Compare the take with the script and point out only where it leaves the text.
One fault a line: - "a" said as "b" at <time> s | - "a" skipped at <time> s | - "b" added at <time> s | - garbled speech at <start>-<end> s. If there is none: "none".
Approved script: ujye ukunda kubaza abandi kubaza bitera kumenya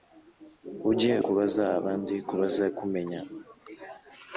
- "ukunda" skipped at 1.1 s
- "bitera" skipped at 2.6 s